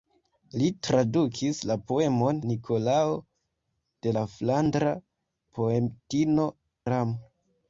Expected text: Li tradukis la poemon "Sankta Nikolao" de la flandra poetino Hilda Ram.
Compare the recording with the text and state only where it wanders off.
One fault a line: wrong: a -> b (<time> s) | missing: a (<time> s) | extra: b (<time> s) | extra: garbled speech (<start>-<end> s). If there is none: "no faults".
missing: Sankta (2.4 s)
missing: Hilda (6.5 s)